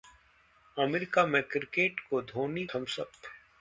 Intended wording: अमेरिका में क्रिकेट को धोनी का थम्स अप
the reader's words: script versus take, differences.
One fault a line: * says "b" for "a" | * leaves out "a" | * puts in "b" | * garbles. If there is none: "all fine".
* leaves out "का"